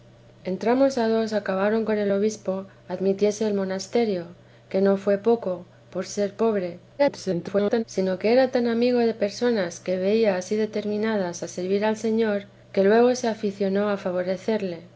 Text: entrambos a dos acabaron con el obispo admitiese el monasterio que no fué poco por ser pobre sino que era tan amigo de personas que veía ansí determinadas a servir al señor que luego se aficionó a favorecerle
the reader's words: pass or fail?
fail